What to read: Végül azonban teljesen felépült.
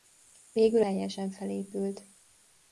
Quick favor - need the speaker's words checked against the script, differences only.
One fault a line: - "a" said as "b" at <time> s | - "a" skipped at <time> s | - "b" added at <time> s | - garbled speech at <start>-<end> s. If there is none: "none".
- "azonban" skipped at 0.8 s